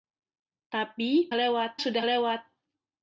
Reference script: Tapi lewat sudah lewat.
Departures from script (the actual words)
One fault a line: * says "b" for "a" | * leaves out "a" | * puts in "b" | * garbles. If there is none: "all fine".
all fine